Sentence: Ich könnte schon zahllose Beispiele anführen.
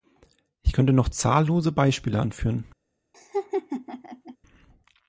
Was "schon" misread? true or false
true